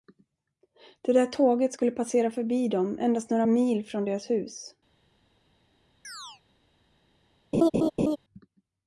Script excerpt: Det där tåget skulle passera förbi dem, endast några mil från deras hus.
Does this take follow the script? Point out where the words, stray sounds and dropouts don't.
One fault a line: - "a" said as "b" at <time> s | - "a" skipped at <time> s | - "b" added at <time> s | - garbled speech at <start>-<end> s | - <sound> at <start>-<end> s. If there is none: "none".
- chirp at 6.0-6.4 s
- laugh at 7.5-8.2 s